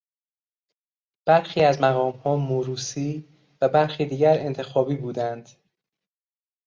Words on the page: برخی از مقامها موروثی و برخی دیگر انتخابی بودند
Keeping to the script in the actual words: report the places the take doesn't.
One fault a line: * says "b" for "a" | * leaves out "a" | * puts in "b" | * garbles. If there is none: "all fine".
all fine